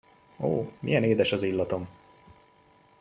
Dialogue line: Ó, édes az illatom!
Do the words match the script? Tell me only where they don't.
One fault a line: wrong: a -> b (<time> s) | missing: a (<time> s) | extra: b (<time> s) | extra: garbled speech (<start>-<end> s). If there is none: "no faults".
extra: milyen (0.8 s)